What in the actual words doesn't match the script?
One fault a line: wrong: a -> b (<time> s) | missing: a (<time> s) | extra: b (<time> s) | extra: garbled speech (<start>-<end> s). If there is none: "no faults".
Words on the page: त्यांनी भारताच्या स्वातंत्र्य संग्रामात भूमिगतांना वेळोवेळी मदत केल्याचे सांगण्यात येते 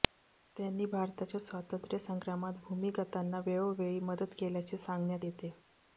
no faults